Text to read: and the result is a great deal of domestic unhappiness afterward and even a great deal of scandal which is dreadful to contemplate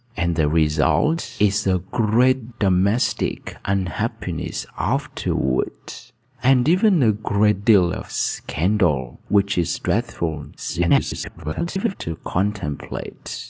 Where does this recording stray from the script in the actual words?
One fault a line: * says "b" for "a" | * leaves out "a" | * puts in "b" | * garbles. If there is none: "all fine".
* leaves out "deal of"
* garbles